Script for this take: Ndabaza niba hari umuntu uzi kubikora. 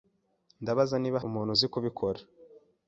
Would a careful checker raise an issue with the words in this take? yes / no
yes